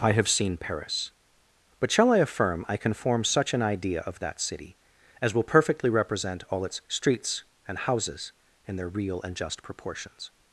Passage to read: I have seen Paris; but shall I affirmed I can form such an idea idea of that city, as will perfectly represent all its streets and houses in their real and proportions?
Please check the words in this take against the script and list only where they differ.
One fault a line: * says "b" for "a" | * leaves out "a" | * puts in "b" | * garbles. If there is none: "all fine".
* says "affirm" for "affirmed"
* leaves out "idea"
* puts in "just"